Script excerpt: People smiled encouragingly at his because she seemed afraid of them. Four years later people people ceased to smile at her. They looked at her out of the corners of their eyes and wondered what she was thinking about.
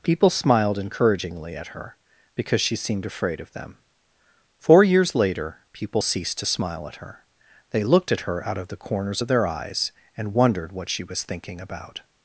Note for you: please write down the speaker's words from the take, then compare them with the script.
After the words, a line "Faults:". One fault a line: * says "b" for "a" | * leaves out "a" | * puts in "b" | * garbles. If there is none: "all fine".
People smiled encouragingly at her because she seemed afraid of them. Four years later people ceased to smile at her. They looked at her out of the corners of their eyes and wondered what she was thinking about.
Faults:
* says "her" for "his"
* leaves out "people"